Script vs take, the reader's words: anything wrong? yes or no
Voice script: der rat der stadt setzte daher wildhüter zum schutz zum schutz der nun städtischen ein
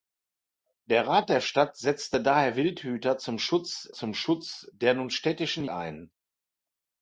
no